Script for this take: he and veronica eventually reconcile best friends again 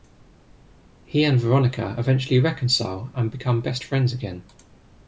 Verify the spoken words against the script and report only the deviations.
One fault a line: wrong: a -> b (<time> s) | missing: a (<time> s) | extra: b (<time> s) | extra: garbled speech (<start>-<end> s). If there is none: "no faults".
extra: and become (3.1 s)